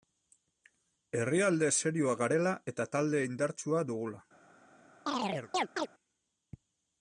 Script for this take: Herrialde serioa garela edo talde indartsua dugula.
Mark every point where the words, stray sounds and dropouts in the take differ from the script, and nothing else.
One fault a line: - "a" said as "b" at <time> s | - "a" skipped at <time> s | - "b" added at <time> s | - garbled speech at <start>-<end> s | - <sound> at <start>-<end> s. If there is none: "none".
- "edo" said as "eta" at 2.7 s
- chirp at 5.1-5.9 s